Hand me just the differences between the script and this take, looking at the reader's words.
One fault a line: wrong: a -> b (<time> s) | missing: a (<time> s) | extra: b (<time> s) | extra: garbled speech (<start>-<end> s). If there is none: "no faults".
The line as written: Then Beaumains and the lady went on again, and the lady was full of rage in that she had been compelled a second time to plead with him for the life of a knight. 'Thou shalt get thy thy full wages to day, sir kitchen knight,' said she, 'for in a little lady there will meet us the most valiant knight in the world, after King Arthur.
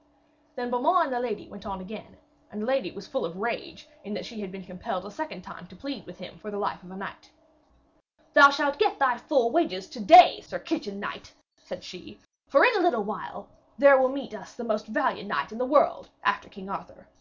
missing: thy (9.2 s)
wrong: lady -> while (13.0 s)